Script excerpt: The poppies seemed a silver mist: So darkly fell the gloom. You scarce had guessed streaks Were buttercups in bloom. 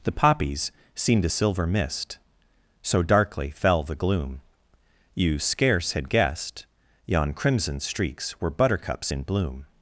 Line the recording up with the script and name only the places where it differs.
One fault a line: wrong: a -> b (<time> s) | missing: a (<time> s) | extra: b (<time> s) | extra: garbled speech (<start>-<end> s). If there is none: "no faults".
extra: yon crimson (7.0 s)